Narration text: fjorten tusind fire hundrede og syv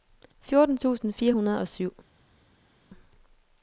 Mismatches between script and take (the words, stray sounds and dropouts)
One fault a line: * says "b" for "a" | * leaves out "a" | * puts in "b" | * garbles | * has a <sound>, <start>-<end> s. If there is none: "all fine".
all fine